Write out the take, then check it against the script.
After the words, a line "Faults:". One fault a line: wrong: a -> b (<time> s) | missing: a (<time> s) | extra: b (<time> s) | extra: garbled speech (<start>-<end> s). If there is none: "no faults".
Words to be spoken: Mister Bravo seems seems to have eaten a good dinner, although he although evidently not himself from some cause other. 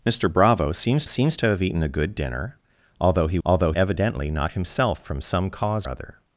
Mister Bravo seems seems to have eaten a good dinner, although he although evidently not himself from some cause other.
Faults:
no faults